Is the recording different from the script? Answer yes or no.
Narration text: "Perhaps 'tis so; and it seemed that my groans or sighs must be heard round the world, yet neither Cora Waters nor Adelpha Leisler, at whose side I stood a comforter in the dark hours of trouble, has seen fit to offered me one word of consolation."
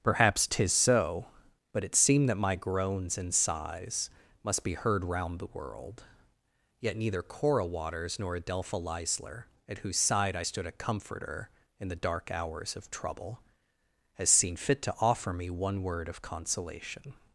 yes